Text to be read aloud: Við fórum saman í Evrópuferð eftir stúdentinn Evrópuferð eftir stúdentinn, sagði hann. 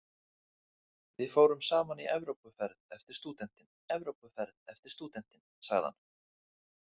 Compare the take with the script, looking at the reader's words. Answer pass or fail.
pass